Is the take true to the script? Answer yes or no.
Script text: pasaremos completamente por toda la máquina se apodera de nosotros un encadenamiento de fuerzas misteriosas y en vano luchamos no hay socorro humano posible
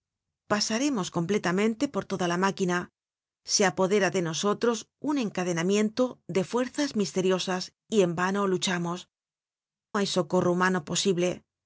no